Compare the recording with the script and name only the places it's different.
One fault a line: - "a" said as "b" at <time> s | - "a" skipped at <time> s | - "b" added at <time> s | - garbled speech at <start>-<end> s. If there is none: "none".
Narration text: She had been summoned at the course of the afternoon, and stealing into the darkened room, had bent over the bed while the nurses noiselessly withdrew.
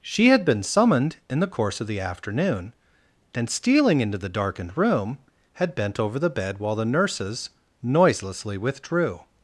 - "at" said as "in" at 1.3 s